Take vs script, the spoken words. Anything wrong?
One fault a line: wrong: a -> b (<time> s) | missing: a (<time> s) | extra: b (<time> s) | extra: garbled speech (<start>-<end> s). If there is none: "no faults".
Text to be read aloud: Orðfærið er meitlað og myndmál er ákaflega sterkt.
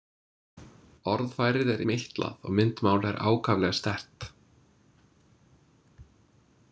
no faults